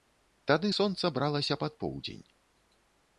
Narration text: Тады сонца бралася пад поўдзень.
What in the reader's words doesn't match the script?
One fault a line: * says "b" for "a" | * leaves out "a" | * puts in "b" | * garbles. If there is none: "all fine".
all fine